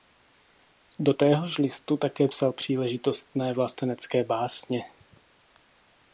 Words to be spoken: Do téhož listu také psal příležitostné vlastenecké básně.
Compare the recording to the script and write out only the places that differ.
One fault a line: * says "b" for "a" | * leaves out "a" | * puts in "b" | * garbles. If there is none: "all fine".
all fine